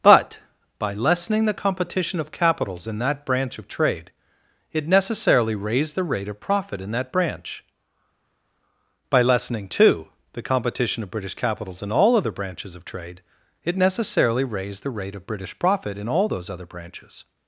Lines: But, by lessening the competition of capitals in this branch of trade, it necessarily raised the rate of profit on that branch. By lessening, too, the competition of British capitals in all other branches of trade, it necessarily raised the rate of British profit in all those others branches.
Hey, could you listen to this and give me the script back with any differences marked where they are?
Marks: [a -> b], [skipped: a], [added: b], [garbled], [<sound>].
But, by lessening the competition of capitals in [this -> that] branch of trade, it necessarily raised the rate of profit [on -> in] that branch. By lessening, too, the competition of British capitals in all other branches of trade, it necessarily raised the rate of British profit in all those [others -> other] branches.